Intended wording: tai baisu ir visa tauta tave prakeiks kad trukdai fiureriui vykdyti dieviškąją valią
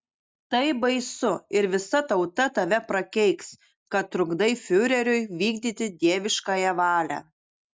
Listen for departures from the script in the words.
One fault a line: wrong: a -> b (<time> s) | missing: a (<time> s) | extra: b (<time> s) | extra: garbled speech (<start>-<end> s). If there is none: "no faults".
no faults